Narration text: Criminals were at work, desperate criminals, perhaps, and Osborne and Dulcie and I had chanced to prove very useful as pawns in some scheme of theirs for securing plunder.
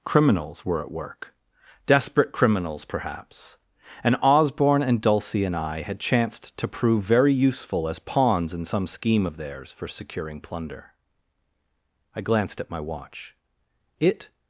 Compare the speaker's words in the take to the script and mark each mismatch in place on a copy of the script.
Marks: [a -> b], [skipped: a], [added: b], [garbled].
Criminals were at work, desperate criminals, perhaps, and Osborne and Dulcie and I had chanced to prove very useful as pawns in some scheme of theirs for securing plunder. [added: I glanced at my watch It]